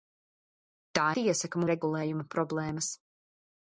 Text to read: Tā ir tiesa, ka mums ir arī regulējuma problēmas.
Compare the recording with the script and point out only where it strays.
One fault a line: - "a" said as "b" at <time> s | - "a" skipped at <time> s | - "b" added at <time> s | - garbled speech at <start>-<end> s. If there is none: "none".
- "ir" skipped at 1.0 s
- "mums ir arī" skipped at 1.6 s